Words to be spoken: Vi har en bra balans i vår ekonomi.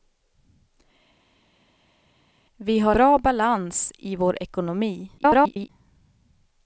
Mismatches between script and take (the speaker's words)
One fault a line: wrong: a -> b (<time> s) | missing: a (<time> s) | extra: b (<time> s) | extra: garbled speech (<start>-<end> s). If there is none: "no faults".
missing: en (3.0 s)
extra: garbled speech (5.2-5.7 s)